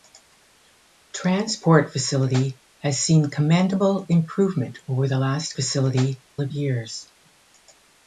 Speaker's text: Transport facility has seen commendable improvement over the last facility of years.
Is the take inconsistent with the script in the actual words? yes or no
no